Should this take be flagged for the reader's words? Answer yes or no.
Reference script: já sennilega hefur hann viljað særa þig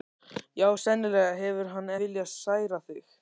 no